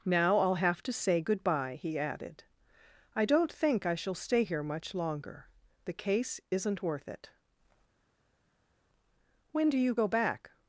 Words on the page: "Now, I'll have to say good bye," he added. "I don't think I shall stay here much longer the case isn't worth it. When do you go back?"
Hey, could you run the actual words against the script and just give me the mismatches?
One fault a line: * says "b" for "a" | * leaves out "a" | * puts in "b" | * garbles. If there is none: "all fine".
all fine